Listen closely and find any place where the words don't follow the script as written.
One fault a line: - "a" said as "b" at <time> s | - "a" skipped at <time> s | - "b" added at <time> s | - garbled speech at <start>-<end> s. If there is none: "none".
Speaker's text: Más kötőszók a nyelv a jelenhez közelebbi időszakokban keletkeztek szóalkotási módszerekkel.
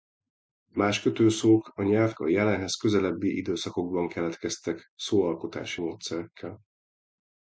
none